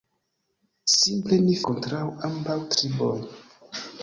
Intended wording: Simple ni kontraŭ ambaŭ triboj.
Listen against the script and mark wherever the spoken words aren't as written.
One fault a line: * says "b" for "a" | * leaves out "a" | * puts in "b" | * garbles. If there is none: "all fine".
all fine